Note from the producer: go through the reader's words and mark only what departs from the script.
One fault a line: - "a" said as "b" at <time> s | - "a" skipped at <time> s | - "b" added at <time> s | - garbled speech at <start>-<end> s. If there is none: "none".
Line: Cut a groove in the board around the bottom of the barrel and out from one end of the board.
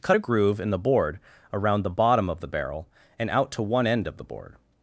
- "from" said as "to" at 3.5 s